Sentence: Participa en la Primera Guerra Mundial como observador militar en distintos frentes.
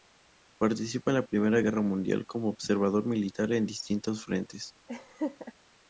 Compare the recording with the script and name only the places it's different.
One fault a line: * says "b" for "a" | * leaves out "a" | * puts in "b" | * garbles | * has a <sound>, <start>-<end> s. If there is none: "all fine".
* has a laugh, 4.9-5.5 s